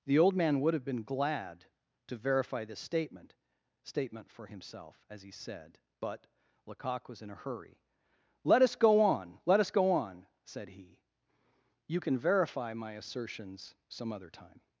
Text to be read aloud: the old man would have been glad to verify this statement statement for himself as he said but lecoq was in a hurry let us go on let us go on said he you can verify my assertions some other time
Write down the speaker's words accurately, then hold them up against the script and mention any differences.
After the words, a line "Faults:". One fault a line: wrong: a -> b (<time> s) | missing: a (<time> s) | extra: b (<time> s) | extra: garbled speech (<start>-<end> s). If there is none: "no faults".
the old man would have been glad to verify this statement statement for himself as he said but lecoq was in a hurry let us go on let us go on said he you can verify my assertions some other time
Faults:
no faults